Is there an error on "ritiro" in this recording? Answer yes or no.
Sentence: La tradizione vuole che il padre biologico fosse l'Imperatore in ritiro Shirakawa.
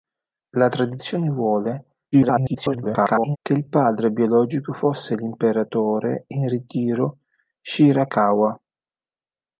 no